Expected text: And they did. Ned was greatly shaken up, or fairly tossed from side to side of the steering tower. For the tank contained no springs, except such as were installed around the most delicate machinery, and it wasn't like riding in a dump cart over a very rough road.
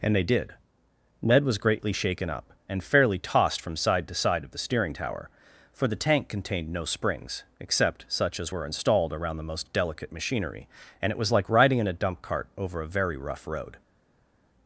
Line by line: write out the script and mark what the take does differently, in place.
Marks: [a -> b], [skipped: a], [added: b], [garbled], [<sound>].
And they did. Ned was greatly shaken up, [or -> and] fairly tossed from side to side of the steering tower. For the tank contained no springs, except such as were installed around the most delicate machinery, and it [wasn't -> was] like riding in a dump cart over a very rough road.